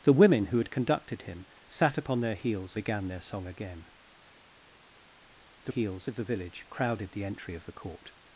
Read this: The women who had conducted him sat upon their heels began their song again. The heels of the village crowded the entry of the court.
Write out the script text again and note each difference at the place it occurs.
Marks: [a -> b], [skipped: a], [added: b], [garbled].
The women who had conducted him sat upon their heels began their song again. The heels of the village crowded the entry of the court.